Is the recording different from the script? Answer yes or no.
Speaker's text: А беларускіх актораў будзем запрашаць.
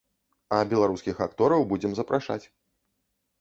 no